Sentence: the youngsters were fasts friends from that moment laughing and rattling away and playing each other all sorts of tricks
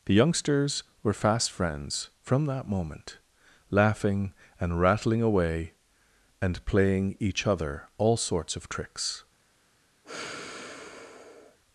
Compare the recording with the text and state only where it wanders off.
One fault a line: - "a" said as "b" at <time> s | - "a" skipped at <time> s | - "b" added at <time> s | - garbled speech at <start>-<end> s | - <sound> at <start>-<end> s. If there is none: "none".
- "fasts" said as "fast" at 1.1 s
- sigh at 10.0-11.6 s